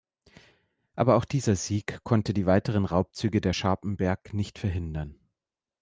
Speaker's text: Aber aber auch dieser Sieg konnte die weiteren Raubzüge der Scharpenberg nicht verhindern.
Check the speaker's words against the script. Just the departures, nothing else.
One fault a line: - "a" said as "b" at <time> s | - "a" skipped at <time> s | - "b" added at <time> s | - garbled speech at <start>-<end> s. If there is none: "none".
- "aber" skipped at 1.1 s